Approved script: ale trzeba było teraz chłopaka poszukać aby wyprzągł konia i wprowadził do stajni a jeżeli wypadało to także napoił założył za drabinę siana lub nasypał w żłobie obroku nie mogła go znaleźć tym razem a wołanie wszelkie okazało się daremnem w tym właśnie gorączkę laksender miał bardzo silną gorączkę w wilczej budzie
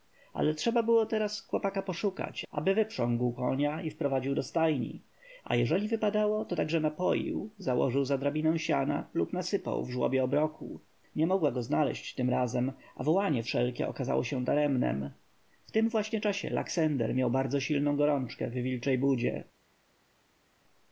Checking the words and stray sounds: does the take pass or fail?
fail